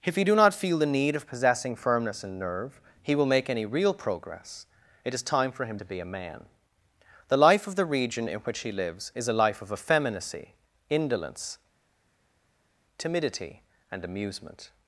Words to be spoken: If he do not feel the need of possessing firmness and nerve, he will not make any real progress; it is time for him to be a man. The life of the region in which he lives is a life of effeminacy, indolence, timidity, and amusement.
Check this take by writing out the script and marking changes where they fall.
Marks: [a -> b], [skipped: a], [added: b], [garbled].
If he do not feel the need of possessing firmness and nerve, he will [skipped: not] make any real progress; it is time for him to be a man. The life of the region in which he lives is a life of effeminacy, indolence, timidity, and amusement.